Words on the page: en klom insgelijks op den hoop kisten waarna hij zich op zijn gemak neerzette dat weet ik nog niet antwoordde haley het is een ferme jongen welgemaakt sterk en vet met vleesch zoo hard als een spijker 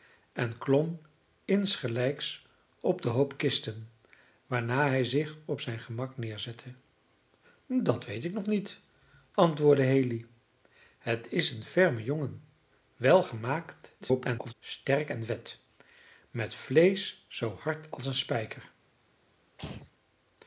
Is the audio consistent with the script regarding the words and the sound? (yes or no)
no